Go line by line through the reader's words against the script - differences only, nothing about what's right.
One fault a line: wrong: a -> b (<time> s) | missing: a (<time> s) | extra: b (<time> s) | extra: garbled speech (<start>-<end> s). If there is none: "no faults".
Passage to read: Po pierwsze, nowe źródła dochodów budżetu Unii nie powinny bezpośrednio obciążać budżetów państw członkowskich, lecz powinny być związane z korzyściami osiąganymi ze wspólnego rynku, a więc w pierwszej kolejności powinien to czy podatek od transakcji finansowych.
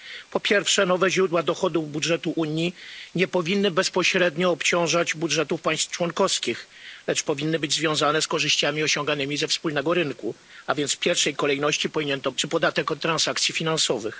no faults